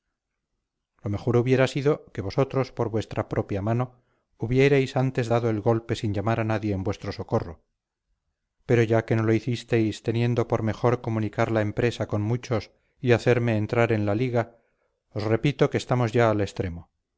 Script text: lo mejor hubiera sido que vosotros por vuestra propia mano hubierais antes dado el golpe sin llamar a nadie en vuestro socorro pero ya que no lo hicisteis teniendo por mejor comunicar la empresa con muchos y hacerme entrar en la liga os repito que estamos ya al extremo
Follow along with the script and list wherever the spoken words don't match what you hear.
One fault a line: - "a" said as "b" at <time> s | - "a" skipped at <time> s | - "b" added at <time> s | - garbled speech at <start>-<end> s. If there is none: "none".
none